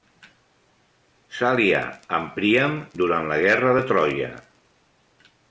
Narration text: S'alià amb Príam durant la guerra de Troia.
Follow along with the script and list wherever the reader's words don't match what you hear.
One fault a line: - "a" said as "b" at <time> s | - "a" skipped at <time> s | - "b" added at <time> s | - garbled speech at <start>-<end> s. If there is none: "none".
none